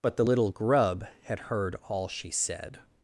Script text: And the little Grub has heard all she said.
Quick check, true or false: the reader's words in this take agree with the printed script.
false